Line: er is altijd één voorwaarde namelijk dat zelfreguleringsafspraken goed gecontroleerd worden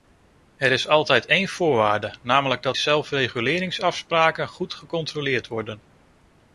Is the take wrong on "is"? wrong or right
right